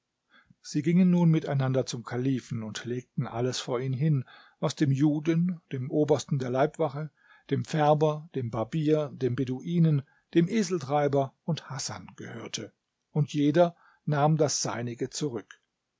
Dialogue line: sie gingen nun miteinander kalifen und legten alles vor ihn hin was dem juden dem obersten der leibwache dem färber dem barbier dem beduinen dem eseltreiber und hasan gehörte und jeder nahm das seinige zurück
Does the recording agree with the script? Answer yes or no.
no